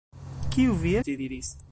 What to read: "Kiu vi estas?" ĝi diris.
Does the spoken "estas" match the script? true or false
false